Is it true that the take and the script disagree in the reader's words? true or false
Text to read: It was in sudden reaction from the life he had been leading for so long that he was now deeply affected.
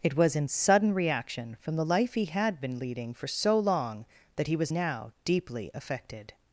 false